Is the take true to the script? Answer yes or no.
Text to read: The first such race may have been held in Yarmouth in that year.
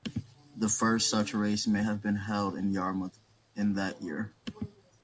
yes